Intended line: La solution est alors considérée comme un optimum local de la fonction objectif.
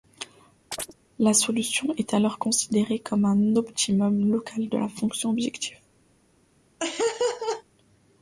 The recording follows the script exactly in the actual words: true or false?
true